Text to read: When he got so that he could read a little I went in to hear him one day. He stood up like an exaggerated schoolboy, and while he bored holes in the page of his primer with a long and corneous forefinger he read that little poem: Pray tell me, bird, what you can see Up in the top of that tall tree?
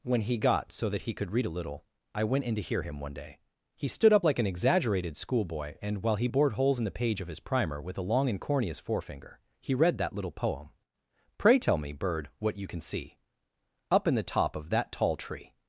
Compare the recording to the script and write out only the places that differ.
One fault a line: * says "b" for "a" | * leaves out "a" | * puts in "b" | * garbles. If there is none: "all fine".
all fine